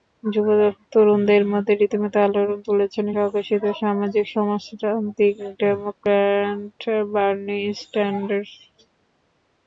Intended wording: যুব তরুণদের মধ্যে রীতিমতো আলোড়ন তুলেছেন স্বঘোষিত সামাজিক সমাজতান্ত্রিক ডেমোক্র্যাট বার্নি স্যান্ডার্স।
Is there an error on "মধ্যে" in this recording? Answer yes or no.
no